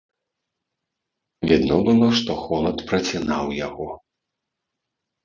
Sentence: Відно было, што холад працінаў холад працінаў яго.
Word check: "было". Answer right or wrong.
right